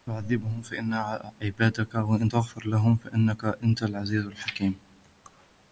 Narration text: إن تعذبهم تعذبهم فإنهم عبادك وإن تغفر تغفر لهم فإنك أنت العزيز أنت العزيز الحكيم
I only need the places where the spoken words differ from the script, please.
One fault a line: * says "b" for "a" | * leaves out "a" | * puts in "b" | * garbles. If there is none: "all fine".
* leaves out "تعذبهم"
* leaves out "تغفر"
* leaves out "أنت العزيز"